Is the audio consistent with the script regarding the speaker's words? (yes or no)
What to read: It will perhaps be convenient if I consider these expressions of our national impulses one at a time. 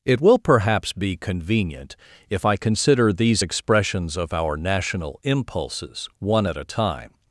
yes